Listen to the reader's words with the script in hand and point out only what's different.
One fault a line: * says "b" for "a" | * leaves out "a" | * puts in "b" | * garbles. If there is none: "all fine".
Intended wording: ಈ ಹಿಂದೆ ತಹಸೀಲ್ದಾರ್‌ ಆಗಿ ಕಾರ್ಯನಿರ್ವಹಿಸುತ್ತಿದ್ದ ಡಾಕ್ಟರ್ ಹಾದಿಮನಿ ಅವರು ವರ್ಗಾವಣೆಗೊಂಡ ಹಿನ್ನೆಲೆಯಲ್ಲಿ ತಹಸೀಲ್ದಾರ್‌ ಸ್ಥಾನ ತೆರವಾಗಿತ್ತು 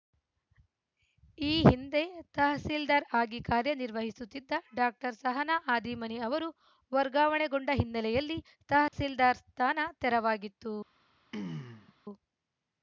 * puts in "ಸಹನಾ"